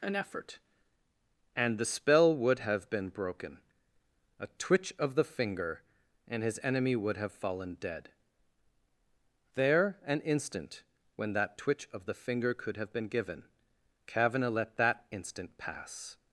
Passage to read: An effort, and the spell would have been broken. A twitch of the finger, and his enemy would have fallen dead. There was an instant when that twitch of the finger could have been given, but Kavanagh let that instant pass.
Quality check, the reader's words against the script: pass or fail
fail